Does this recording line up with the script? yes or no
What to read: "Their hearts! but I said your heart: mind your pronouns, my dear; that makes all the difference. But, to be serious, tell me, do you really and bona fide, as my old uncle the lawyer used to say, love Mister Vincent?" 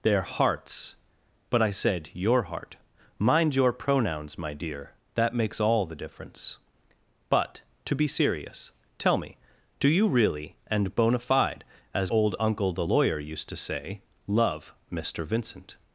no